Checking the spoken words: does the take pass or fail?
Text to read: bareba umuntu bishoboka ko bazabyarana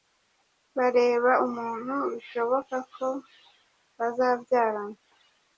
pass